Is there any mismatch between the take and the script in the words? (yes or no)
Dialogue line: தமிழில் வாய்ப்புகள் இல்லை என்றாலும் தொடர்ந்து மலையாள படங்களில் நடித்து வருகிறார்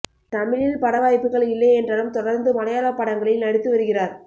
yes